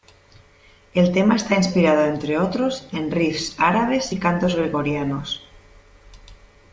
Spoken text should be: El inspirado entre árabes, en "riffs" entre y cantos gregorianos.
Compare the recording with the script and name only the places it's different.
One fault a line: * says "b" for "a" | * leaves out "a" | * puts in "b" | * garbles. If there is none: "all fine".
* puts in "tema está"
* says "otros" for "árabes"
* says "árabes" for "entre"